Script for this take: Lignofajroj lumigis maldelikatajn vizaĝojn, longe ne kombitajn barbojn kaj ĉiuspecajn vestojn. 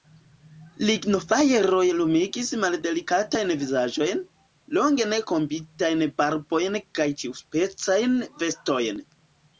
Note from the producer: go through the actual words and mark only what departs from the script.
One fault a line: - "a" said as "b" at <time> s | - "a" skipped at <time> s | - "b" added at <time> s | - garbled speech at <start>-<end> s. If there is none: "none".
none